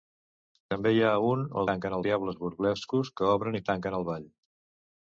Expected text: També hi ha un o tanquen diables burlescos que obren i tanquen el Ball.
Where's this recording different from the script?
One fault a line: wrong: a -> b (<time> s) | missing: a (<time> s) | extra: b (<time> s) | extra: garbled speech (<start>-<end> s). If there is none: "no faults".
no faults